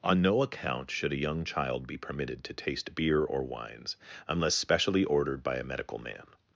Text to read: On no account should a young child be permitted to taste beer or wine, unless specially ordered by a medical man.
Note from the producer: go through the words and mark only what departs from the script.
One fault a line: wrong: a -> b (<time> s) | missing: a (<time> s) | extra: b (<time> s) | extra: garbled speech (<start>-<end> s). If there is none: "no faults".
wrong: wine -> wines (3.4 s)